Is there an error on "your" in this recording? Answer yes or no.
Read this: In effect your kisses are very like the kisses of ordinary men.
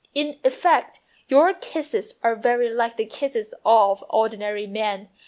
no